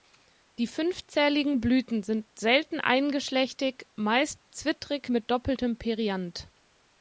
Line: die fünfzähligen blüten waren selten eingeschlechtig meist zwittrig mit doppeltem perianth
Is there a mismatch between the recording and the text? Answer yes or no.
yes